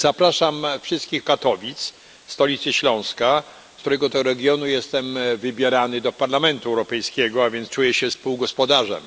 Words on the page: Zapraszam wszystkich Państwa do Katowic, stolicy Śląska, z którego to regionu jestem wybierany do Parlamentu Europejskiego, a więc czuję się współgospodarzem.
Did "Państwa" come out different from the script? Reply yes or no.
yes